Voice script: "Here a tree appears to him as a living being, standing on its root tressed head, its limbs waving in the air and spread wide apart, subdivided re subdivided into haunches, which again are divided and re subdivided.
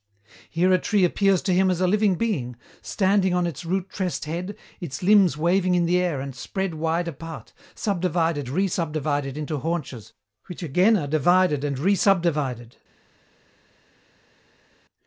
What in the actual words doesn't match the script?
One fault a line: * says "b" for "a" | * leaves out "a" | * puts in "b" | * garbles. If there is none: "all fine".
all fine